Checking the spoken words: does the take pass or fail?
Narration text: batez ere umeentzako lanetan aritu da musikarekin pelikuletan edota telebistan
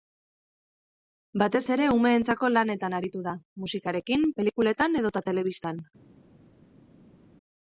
pass